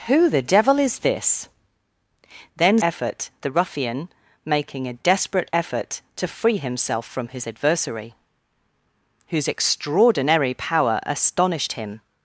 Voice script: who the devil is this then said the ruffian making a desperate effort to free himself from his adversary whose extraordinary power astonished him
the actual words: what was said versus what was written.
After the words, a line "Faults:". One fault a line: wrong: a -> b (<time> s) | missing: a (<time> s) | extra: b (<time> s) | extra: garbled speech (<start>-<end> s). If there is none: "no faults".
who the devil is this then effort the ruffian making a desperate effort to free himself from his adversary whose extraordinary power astonished him
Faults:
wrong: said -> effort (2.8 s)